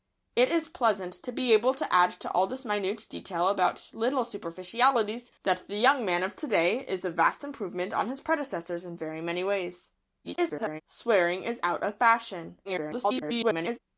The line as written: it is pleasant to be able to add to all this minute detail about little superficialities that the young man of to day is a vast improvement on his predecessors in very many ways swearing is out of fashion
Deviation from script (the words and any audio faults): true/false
true